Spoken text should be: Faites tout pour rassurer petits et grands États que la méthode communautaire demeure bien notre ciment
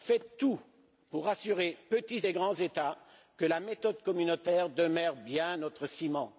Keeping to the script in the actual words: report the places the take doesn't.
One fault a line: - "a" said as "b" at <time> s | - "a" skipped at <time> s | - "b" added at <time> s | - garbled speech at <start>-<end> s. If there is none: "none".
none